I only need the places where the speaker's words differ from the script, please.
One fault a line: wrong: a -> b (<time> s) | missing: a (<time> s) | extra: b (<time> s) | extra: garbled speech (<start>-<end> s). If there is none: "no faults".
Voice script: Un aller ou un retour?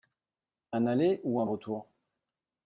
no faults